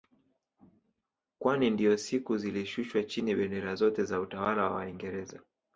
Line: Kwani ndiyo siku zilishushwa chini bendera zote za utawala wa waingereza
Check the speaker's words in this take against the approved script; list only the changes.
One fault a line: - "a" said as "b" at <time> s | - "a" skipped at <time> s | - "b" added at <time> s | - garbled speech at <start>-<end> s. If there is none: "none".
none